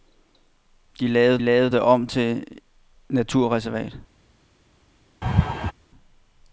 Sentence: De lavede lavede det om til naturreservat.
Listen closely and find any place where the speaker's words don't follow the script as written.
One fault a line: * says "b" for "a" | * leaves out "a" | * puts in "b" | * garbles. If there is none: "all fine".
all fine